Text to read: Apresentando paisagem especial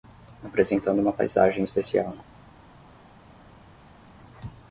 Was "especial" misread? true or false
false